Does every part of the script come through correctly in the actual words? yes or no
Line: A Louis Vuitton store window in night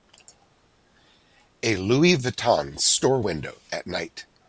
no